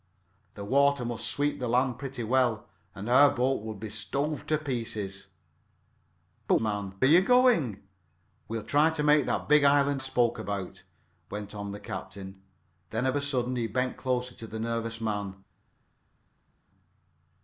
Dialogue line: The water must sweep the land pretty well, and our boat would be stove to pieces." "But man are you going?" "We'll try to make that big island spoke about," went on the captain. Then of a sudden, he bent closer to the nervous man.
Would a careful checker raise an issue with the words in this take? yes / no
no